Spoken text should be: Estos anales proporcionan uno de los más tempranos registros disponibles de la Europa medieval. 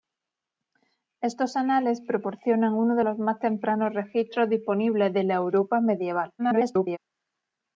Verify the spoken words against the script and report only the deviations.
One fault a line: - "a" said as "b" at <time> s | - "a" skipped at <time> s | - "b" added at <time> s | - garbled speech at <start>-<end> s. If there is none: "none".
- garbled speech at 6.4-7.0 s